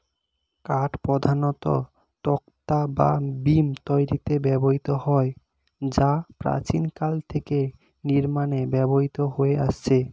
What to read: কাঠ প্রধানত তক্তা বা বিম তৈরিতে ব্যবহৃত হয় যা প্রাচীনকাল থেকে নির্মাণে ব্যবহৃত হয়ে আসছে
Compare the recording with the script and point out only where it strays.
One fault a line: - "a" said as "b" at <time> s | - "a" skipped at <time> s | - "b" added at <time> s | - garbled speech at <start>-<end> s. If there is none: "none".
none